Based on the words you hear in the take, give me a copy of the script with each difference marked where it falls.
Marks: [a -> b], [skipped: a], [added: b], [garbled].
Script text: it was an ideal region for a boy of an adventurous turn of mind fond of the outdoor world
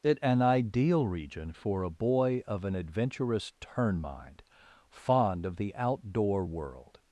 it [skipped: was] an ideal region for a boy of an adventurous turn [skipped: of] mind fond of the outdoor world